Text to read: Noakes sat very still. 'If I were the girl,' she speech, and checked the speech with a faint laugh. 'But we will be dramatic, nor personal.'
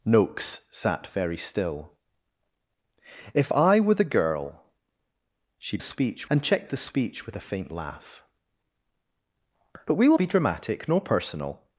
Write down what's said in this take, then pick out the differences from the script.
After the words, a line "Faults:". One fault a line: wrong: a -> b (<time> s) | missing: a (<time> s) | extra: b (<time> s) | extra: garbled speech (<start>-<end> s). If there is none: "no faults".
Noakes sat very still. 'If I were the girl,' she speech, and checked the speech with a faint laugh. 'But we will be dramatic, nor personal.'
Faults:
no faults